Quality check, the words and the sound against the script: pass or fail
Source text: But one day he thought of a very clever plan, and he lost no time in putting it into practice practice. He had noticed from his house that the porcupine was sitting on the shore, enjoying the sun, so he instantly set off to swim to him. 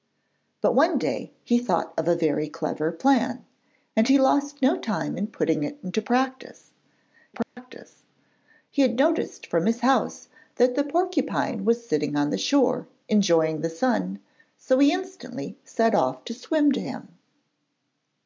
fail